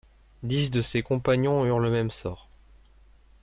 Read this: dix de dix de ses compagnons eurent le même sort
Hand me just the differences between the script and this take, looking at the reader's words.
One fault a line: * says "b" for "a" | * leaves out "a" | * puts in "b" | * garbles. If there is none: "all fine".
* leaves out "dix de"